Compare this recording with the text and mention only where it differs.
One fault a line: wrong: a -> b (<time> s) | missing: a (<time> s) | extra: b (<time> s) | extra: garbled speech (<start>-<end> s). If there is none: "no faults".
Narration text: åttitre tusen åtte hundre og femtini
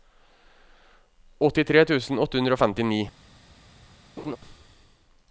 no faults